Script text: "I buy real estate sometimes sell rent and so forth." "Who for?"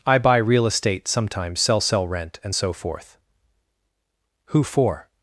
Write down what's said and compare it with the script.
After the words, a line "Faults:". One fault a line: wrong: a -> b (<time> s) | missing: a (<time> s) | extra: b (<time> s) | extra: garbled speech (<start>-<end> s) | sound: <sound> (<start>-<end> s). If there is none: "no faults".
"I buy real estate sometimes sell sell rent and so forth." "Who for?"
Faults:
extra: sell (1.8 s)